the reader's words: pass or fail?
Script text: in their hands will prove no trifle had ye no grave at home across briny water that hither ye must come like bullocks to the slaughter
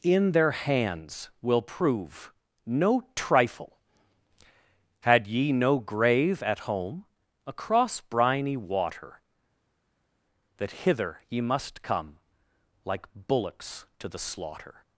pass